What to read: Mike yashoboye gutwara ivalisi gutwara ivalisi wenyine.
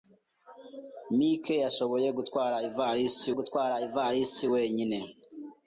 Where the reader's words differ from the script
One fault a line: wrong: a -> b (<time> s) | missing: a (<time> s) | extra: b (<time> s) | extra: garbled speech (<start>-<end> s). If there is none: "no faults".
no faults